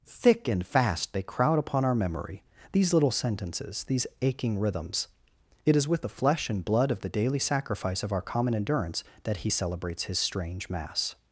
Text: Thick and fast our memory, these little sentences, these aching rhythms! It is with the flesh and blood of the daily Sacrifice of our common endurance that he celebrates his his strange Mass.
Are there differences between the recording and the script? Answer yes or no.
yes